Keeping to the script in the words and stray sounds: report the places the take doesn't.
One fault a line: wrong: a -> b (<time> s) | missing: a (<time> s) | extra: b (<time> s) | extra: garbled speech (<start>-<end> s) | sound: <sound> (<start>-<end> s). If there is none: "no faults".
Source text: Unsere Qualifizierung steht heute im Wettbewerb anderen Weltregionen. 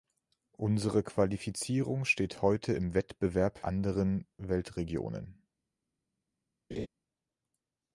sound: laugh (6.7-6.9 s)